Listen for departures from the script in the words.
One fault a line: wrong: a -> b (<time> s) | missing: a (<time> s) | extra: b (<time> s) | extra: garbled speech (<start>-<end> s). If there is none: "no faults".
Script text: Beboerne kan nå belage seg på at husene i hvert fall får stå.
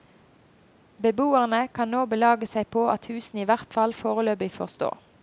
extra: foreløpig (3.9 s)